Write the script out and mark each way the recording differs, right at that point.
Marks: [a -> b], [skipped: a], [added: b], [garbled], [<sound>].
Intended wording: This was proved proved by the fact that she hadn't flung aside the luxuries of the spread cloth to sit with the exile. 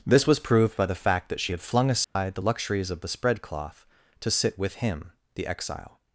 This was proved [skipped: proved] by the fact that she [hadn't -> had] flung aside [dropout] the luxuries of the spread cloth to sit with [added: him] the exile.